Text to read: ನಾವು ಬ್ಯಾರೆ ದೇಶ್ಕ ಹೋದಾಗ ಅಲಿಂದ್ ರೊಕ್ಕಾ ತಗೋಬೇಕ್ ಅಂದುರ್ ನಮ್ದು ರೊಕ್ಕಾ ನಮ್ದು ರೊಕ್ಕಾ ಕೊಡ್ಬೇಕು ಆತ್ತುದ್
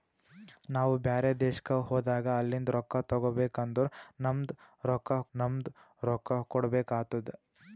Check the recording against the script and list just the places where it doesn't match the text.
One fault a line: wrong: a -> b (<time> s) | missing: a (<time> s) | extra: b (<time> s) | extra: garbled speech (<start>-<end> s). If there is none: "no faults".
no faults